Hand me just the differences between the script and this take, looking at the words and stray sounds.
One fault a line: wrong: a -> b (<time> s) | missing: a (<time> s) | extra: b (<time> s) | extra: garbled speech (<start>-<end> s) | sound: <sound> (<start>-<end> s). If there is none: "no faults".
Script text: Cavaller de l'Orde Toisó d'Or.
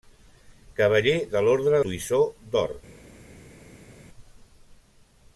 no faults